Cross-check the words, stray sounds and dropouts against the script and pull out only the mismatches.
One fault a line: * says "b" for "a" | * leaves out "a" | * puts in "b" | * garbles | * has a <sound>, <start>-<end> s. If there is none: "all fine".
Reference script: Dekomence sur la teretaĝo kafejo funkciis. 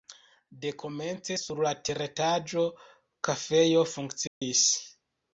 * has a dropout, 4.3-4.4 s